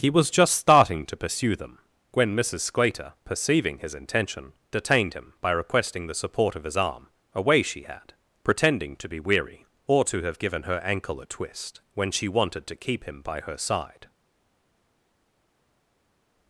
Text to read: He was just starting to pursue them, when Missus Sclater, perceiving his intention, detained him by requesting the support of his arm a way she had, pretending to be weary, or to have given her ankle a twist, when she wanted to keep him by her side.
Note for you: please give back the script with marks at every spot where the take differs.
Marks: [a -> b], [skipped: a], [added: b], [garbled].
He was just starting to pursue them, when Missus Sclater, perceiving his intention, detained him by requesting the support of his arm a way she had, pretending to be weary, or to have given her ankle a twist, when she wanted to keep him by her side.